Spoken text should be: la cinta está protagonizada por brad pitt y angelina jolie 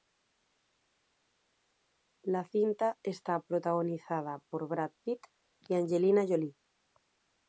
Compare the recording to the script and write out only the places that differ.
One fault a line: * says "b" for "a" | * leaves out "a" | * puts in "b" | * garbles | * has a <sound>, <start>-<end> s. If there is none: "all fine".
all fine